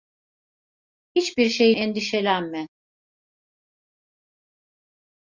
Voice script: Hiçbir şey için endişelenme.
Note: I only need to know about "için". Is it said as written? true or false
false